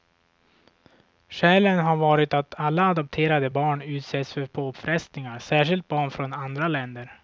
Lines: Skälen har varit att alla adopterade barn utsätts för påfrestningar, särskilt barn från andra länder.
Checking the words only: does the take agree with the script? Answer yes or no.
yes